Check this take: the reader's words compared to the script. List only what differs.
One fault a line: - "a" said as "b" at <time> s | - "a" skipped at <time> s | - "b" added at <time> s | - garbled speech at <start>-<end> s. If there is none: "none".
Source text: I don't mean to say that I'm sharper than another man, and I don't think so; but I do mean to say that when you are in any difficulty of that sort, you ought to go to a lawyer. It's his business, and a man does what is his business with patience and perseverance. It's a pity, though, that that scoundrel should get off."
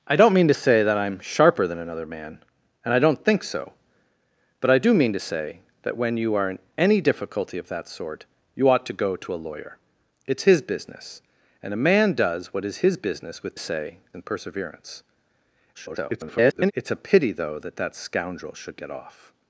- "patience" said as "say" at 13.6 s
- garbled speech at 15.7-16.7 s